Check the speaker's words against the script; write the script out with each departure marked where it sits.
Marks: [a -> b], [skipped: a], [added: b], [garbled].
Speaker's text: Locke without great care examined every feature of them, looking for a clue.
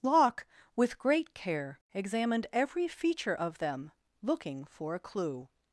Locke [without -> with] great care examined every feature of them, looking for a clue.